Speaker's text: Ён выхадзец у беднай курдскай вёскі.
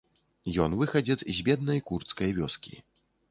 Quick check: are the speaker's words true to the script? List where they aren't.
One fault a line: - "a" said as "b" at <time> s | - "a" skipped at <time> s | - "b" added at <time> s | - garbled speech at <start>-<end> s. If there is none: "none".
- "у" said as "з" at 1.2 s